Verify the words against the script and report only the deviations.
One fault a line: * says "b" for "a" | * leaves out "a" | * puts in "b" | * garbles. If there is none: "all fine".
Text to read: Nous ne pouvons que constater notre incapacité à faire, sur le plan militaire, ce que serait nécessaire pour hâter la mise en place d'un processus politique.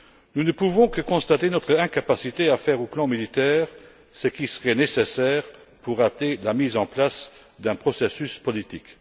* says "qui" for "que"